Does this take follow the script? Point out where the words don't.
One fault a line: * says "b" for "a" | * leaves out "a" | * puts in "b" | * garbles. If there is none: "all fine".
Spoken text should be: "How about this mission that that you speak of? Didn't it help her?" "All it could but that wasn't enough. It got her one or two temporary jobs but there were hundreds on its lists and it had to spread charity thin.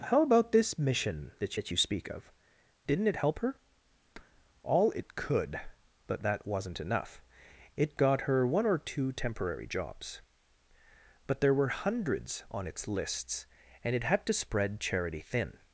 all fine